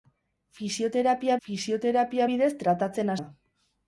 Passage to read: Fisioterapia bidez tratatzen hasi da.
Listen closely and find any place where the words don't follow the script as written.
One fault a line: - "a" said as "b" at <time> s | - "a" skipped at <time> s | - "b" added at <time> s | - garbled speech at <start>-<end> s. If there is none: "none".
- "fisioterapia" added at 1.5 s
- "hasi" skipped at 3.1 s